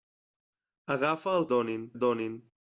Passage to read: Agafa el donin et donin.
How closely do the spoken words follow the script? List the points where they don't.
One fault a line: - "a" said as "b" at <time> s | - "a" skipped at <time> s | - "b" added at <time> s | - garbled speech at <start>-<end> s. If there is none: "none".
none